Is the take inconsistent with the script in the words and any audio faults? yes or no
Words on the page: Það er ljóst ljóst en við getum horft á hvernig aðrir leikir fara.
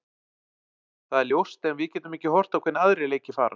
yes